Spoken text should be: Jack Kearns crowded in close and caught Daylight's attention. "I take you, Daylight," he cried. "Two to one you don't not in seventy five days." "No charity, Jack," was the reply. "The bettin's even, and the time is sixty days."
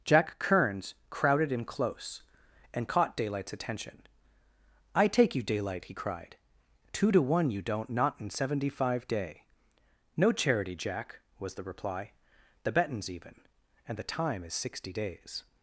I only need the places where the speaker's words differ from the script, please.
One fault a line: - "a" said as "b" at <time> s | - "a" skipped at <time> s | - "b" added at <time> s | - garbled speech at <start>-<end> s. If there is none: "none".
- "days" said as "day" at 9.1 s